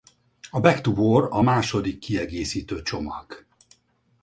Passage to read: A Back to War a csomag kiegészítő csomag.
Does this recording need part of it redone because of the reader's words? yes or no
yes